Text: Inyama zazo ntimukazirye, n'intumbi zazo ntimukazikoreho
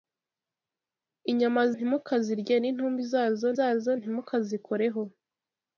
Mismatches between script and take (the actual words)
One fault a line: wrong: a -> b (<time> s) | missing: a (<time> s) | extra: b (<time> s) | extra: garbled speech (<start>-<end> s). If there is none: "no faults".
missing: zazo (1.6 s)
extra: zazo (3.6 s)